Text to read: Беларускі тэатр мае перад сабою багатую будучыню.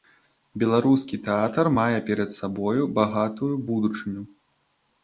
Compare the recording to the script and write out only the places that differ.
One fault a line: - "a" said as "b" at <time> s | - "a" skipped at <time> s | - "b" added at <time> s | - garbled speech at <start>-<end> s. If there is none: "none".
none